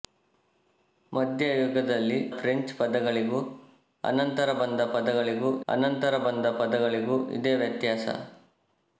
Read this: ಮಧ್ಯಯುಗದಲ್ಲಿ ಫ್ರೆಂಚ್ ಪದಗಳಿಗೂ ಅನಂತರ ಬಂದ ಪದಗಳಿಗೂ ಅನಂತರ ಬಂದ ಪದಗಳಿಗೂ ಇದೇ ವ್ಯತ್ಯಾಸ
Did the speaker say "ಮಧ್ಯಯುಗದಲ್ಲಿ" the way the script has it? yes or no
yes